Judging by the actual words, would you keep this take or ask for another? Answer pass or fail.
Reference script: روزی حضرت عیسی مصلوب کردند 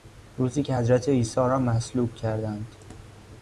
fail